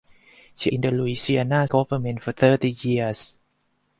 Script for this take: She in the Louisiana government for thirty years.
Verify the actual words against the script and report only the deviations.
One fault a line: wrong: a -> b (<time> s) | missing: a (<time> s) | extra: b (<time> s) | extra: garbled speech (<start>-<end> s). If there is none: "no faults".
no faults